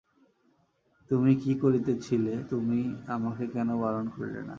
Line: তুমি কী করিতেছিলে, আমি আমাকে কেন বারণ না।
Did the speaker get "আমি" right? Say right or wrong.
wrong